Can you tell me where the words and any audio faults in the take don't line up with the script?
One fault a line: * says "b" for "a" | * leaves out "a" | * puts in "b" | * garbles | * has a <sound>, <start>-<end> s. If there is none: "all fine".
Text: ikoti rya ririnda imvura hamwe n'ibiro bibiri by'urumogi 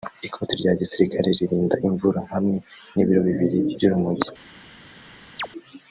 * puts in "gisirikare"
* has a chirp, 5.4-5.5 s